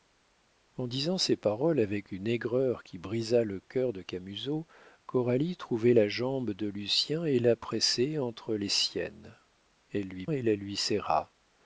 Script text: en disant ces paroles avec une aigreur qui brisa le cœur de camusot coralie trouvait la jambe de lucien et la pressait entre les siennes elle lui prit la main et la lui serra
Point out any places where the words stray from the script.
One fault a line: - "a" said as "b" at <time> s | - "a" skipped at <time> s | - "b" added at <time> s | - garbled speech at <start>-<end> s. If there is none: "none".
- "prit la main" skipped at 10.2 s